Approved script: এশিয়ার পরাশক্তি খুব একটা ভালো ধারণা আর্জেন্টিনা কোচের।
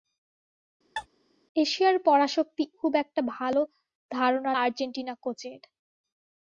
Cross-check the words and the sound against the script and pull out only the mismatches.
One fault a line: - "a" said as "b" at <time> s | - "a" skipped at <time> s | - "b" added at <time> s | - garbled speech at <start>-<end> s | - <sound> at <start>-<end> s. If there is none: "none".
- sneeze at 1.0-1.1 s